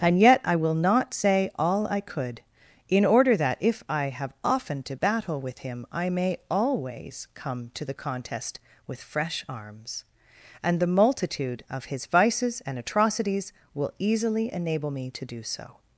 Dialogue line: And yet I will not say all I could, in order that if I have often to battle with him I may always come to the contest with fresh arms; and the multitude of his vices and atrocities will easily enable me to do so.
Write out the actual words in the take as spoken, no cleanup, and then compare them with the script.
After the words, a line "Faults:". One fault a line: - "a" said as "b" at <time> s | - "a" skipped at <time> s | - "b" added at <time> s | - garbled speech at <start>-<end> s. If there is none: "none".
And yet I will not say all I could, in order that if I have often to battle with him I may always come to the contest with fresh arms; and the multitude of his vices and atrocities will easily enable me to do so.
Faults:
none